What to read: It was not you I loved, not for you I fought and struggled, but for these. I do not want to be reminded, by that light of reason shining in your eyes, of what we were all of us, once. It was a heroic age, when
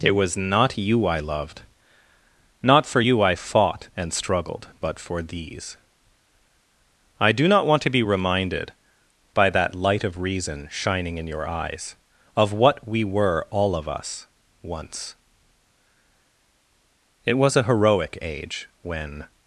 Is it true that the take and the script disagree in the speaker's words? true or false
false